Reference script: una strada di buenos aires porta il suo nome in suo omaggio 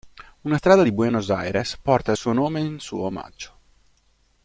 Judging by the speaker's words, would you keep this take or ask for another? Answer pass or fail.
pass